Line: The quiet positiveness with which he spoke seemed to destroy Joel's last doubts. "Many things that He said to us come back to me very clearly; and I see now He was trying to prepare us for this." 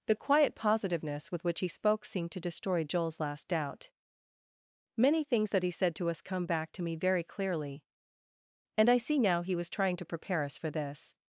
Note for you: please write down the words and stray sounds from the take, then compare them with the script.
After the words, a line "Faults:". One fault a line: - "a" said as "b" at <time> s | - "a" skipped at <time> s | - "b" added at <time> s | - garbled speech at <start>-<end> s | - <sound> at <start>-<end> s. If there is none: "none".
The quiet positiveness with which he spoke seemed to destroy Joel's last doubt. "Many things that He said to us come back to me very clearly; and I see now He was trying to prepare us for this."
Faults:
- "doubts" said as "doubt" at 3.5 s